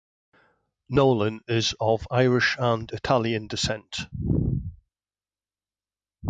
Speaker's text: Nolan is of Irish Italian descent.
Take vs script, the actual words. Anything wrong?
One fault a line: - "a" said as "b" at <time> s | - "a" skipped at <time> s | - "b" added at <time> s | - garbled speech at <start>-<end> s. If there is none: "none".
- "and" added at 2.6 s